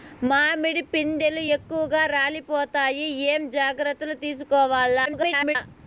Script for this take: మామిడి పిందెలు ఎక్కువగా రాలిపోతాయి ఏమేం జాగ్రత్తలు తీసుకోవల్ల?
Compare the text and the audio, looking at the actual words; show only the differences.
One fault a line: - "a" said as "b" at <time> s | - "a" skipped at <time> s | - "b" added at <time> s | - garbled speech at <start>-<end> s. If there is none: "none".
- garbled speech at 5.1-5.6 s